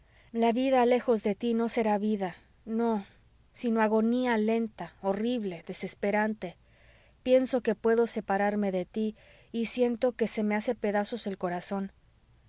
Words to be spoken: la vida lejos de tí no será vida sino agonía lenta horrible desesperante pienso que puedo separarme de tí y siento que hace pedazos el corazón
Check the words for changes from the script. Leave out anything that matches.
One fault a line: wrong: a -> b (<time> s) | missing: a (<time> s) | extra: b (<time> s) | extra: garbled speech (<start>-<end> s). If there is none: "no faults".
extra: no (2.6 s)
extra: se me (10.3 s)